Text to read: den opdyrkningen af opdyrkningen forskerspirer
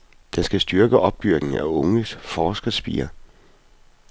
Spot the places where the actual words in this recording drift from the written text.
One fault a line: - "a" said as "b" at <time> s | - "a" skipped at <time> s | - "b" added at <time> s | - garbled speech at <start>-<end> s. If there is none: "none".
- "skal styrke" added at 0.4 s
- "opdyrkningen" said as "unge" at 1.6 s